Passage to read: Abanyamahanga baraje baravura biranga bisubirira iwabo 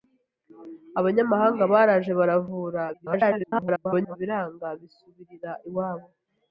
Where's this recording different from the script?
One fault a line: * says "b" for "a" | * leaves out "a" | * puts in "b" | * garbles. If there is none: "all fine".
* garbles